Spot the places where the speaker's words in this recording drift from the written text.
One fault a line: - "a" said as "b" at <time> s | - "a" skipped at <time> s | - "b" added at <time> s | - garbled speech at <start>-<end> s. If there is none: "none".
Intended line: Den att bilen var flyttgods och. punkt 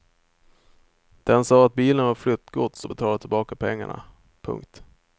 - "sa" added at 1.4 s
- "betalade tillbaka pengarna" added at 2.9 s